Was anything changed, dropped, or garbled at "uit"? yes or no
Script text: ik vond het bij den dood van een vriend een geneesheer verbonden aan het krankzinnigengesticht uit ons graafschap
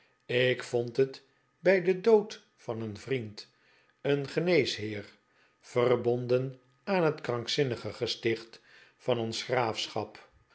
yes